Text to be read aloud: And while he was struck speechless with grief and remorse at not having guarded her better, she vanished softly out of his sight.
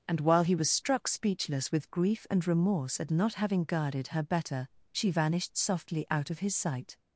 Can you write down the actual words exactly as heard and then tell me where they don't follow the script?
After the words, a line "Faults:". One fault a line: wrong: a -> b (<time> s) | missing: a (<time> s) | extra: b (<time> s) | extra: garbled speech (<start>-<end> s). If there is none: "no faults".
And while he was struck speechless with grief and remorse at not having guarded her better, she vanished softly out of his sight.
Faults:
no faults